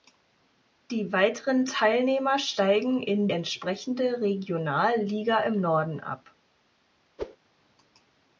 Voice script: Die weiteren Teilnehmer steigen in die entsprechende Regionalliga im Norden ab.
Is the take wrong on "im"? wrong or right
right